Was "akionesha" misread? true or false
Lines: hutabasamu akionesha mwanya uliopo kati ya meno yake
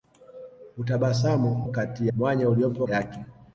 true